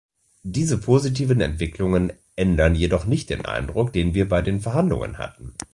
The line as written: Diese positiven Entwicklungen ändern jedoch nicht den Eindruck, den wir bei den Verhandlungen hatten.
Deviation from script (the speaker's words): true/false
false